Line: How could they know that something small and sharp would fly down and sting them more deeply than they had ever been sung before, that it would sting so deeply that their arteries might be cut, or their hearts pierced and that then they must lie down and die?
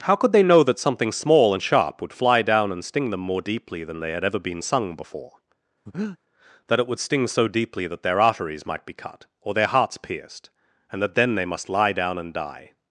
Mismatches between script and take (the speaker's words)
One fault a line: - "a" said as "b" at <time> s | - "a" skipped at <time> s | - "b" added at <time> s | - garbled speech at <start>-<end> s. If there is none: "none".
none